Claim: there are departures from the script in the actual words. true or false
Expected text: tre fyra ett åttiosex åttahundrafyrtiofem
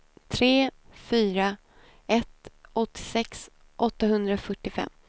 false